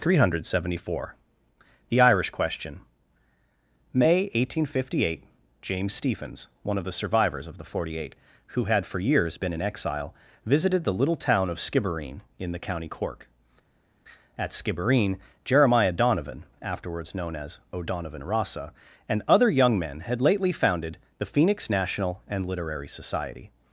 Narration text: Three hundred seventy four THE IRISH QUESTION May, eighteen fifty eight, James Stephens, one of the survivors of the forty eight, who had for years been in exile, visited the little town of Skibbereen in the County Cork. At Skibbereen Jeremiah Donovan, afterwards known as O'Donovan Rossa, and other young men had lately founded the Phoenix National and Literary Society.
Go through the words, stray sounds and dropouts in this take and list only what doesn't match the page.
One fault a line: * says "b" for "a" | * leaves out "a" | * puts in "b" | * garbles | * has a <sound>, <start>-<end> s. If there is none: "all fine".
all fine